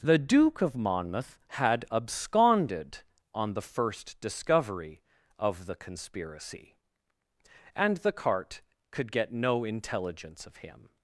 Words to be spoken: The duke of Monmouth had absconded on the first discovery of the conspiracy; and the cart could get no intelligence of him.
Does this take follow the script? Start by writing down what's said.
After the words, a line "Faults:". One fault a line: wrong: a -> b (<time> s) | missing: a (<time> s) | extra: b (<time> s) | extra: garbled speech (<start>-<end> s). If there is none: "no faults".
The duke of Monmouth had absconded on the first discovery of the conspiracy; and the cart could get no intelligence of him.
Faults:
no faults